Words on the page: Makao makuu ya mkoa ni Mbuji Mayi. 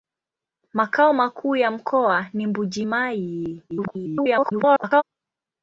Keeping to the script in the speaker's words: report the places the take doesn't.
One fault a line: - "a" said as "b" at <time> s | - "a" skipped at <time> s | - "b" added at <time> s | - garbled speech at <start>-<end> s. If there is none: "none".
- garbled speech at 3.7-5.0 s